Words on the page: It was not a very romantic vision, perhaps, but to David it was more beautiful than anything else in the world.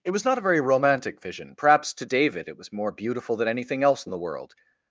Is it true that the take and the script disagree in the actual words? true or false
true